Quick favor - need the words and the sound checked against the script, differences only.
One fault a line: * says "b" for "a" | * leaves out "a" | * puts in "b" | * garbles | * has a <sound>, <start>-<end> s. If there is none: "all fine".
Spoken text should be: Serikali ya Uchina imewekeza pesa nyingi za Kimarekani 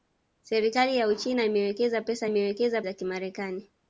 * says "imewekeza" for "nyingi"